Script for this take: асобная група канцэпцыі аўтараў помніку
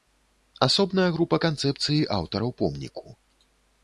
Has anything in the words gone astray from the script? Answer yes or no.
no